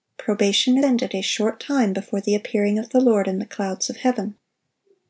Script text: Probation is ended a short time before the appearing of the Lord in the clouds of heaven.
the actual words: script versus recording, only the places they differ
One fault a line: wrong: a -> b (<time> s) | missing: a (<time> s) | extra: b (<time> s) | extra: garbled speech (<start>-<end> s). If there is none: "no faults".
missing: is (0.8 s)